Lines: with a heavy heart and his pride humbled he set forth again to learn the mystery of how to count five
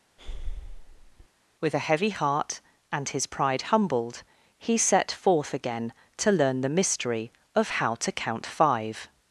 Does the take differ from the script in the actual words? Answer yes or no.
no